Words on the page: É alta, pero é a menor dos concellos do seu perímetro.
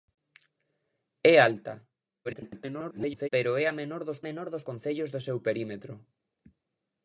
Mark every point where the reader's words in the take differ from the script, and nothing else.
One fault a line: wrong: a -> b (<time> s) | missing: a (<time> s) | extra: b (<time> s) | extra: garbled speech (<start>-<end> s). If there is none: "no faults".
extra: garbled speech (2.2-3.3 s)
extra: menor dos (4.3 s)